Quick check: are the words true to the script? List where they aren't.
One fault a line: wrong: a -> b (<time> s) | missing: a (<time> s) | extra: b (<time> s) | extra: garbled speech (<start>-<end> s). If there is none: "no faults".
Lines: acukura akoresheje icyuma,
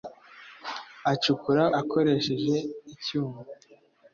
no faults